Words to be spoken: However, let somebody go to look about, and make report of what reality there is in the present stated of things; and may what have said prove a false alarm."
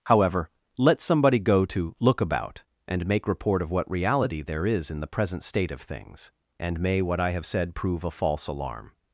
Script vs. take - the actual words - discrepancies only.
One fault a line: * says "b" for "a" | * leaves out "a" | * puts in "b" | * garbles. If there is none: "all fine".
* says "state" for "stated"
* puts in "I"